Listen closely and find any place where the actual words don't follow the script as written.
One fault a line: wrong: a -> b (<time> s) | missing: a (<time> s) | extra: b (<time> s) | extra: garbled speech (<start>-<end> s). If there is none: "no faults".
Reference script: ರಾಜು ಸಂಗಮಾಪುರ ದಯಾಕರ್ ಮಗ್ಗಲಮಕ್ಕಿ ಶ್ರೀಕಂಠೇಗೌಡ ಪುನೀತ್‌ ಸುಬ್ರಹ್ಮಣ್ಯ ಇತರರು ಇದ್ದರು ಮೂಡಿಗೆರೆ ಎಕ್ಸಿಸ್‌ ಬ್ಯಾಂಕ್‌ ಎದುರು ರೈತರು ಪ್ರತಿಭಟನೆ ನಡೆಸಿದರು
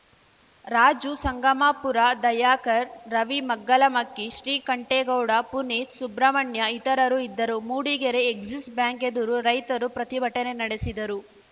extra: ರವಿ (3.1 s)